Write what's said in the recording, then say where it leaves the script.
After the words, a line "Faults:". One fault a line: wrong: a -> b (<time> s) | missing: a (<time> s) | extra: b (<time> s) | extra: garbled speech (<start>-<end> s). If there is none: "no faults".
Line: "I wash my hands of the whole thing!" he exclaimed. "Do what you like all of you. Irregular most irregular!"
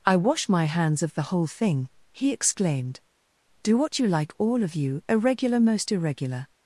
"I wash my hands of the whole thing!" he exclaimed. "Do what you like all of you. Irregular most irregular!"
Faults:
no faults